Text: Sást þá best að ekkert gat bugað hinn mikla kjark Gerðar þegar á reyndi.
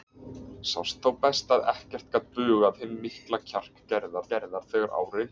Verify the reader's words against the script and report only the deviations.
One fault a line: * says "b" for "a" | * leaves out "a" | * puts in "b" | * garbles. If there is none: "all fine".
* puts in "Gerðar"